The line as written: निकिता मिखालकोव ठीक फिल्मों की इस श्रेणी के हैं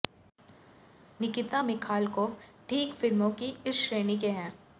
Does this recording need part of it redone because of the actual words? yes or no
no